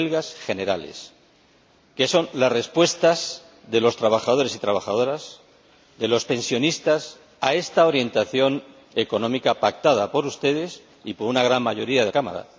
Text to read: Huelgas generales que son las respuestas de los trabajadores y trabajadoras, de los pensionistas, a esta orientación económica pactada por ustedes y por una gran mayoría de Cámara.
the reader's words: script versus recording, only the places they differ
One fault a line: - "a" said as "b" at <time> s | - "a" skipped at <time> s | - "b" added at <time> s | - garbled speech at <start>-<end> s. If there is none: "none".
none